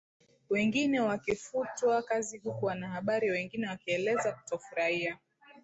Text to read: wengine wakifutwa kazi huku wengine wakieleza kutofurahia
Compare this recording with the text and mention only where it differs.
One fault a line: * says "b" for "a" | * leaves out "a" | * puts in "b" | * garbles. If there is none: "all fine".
* puts in "wanahabari"